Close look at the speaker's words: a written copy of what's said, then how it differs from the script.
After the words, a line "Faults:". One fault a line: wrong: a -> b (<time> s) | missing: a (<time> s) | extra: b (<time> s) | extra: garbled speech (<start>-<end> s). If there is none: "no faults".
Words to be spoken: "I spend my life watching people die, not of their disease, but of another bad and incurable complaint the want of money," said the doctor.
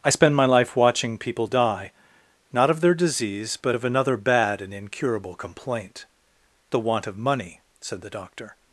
"I spend my life watching people die, not of their disease, but of another bad and incurable complaint the want of money," said the doctor.
Faults:
no faults